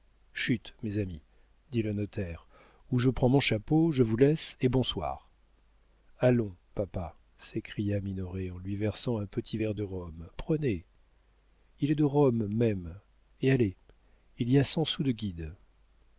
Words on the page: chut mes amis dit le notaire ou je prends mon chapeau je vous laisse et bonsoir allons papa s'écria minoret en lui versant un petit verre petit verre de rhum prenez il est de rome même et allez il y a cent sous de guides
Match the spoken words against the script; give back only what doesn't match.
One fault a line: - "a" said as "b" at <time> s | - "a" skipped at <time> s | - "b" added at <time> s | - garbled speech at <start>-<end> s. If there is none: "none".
- "petit verre" skipped at 9.7 s